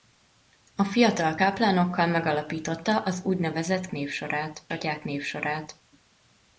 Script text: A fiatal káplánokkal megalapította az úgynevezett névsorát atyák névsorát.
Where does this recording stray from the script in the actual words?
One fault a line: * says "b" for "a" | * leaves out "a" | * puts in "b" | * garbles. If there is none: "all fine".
all fine